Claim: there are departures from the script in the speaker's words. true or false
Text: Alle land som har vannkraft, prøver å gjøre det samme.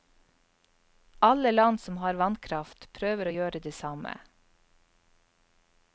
false